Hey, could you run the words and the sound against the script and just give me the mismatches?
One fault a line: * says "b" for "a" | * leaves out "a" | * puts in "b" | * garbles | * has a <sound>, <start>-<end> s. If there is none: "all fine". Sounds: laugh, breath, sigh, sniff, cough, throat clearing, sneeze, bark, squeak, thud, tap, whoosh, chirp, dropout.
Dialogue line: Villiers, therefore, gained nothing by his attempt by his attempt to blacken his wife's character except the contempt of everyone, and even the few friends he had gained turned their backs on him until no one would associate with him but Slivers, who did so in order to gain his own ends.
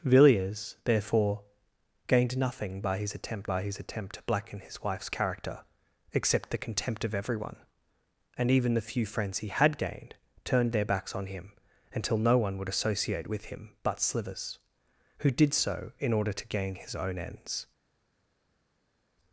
all fine